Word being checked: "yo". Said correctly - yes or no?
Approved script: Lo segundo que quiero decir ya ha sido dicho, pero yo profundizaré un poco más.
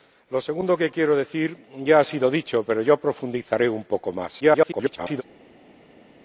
yes